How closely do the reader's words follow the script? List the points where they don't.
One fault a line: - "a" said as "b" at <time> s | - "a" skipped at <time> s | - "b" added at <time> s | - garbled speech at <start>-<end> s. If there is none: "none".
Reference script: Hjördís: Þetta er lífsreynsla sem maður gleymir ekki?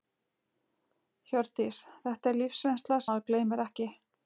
- "sem" skipped at 3.0 s